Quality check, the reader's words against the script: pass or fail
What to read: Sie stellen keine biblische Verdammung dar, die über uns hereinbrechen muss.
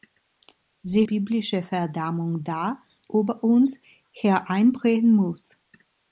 fail